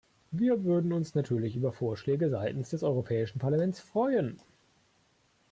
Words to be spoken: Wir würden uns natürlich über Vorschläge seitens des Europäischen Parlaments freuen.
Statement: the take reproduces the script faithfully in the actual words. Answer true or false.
true